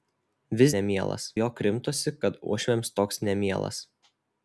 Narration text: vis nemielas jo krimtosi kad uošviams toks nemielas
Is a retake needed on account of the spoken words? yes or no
no